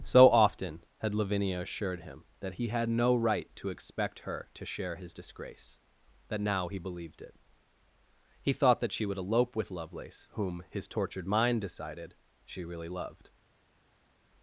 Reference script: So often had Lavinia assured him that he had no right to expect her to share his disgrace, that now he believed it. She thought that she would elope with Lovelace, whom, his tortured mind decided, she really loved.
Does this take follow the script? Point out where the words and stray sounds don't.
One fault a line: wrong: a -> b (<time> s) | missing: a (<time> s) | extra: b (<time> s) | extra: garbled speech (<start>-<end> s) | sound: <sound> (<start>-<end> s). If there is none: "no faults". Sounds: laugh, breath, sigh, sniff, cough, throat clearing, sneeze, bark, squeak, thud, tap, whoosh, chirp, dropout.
wrong: She -> He (8.4 s)